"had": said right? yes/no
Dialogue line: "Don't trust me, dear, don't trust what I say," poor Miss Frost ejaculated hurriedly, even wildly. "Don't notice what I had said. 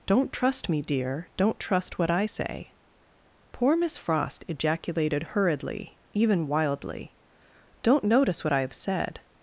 no